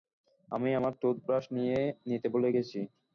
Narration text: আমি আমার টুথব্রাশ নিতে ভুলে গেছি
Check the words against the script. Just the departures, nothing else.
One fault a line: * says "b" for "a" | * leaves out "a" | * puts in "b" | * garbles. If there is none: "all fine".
all fine